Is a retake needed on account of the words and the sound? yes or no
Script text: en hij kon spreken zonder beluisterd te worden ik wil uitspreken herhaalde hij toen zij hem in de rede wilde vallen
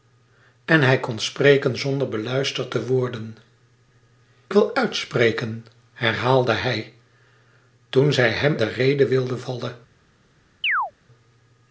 yes